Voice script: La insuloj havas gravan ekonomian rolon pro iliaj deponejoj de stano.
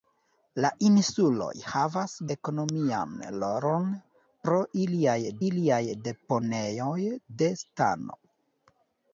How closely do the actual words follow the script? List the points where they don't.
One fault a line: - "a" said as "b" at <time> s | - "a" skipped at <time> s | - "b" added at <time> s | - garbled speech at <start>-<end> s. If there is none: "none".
- "gravan" skipped at 2.1 s
- "iliaj" added at 5.5 s